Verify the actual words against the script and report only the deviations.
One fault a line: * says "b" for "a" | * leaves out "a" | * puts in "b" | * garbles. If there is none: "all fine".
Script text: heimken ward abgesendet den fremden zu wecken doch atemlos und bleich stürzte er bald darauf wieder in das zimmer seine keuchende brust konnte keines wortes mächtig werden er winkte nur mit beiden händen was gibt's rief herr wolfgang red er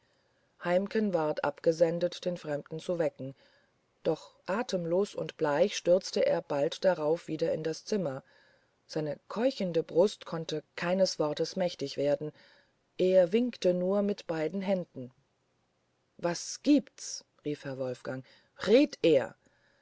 all fine